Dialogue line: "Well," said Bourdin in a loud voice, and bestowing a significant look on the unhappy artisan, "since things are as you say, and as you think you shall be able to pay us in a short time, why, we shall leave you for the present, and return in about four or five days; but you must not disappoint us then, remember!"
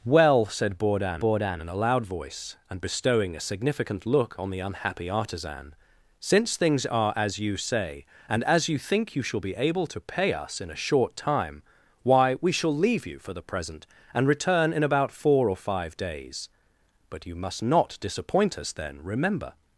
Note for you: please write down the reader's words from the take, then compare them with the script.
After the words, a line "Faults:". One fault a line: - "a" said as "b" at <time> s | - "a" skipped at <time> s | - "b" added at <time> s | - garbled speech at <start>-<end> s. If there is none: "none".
"Well," said Bourdin Bourdin in a loud voice, and bestowing a significant look on the unhappy artisan, "since things are as you say, and as you think you shall be able to pay us in a short time, why, we shall leave you for the present, and return in about four or five days; but you must not disappoint us then, remember!"
Faults:
- "Bourdin" added at 1.2 s